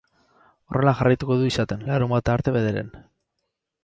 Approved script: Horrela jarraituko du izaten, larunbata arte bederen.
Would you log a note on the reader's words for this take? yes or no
no